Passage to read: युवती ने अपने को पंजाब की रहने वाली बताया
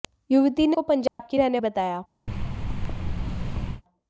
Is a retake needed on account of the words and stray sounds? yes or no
yes